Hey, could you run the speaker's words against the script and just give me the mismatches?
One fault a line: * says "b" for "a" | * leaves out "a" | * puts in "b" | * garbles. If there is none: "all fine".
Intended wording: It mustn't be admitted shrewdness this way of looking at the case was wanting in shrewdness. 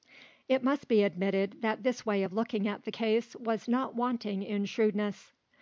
* says "must" for "mustn't"
* says "that" for "shrewdness"
* puts in "not"